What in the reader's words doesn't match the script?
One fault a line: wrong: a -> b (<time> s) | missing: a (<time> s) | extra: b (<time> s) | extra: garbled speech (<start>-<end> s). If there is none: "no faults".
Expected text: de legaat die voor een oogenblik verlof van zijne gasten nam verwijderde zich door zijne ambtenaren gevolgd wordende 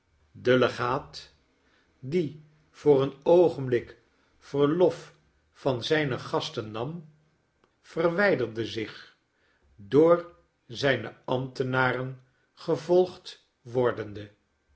no faults